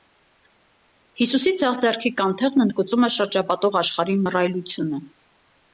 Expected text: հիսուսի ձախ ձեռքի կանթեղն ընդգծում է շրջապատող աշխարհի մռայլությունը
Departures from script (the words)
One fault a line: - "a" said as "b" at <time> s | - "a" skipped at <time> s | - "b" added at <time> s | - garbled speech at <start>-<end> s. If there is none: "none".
none